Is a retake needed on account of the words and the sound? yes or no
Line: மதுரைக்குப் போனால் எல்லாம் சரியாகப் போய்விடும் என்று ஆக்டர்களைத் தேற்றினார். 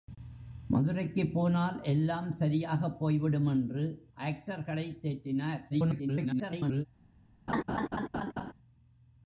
yes